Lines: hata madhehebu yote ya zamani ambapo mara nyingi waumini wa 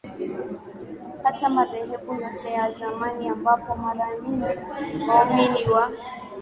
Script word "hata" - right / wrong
right